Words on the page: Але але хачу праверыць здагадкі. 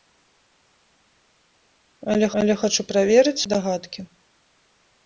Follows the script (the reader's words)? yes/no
yes